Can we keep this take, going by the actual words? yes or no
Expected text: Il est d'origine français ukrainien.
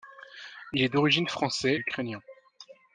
yes